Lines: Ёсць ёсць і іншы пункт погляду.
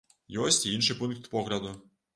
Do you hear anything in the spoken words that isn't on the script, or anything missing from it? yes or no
yes